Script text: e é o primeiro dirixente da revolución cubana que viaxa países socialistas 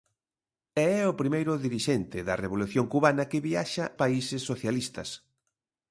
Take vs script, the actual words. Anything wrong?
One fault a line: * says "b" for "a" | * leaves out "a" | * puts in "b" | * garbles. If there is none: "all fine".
all fine